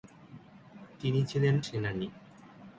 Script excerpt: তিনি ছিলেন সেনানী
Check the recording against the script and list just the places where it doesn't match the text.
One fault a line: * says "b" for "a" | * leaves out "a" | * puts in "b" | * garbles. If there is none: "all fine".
all fine